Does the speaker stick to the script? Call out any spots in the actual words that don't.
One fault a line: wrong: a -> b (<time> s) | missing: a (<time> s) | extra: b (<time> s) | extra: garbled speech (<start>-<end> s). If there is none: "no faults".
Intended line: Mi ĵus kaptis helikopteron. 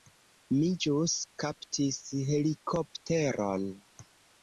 no faults